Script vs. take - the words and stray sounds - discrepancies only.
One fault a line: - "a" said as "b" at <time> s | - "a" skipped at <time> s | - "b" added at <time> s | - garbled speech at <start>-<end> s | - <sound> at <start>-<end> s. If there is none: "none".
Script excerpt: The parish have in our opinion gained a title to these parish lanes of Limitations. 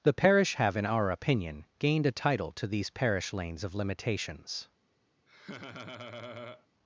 - laugh at 5.3-6.7 s